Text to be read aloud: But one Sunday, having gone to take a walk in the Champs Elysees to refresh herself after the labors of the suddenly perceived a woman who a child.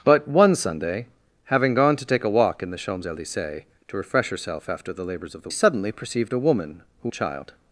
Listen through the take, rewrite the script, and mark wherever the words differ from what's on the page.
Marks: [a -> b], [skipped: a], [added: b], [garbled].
But one Sunday, having gone to take a walk in the Champs Elysees to refresh herself after the labors of the suddenly perceived a woman who a child.